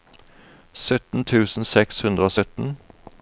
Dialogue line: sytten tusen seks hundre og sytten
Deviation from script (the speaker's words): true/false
false